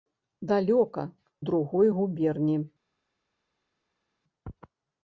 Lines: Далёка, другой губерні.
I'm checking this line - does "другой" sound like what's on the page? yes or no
yes